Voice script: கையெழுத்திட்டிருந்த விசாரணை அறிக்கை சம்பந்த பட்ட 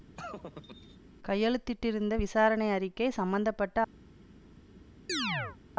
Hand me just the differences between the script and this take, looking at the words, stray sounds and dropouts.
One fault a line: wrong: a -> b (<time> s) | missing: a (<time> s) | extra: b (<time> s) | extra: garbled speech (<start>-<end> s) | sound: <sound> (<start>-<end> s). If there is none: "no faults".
sound: laugh (0.2-1.0 s)
sound: chirp (5.1-5.6 s)